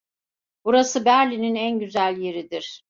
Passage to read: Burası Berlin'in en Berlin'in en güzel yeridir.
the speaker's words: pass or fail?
fail